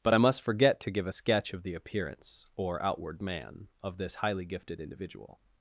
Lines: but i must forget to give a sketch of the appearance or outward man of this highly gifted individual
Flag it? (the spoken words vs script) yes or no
no